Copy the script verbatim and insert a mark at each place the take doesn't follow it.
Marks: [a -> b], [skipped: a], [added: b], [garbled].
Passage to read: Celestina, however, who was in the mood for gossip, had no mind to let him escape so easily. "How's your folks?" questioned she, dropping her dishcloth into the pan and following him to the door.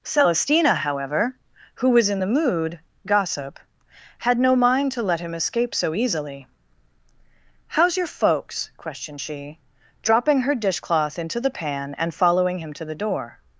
Celestina, however, who was in the mood [skipped: for] gossip, had no mind to let him escape so easily. "How's your folks?" questioned she, dropping her dishcloth into the pan and following him to the door.